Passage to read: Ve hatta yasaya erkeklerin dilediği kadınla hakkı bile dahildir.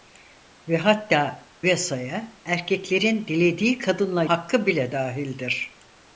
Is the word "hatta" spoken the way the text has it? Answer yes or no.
yes